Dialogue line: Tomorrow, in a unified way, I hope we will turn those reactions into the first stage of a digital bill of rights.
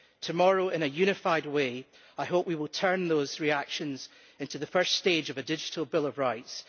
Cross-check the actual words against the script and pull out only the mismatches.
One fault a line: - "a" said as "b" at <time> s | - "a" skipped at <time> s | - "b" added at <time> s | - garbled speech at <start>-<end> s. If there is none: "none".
none